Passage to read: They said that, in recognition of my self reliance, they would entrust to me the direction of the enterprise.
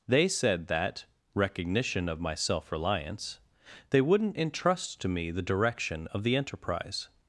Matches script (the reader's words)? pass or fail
fail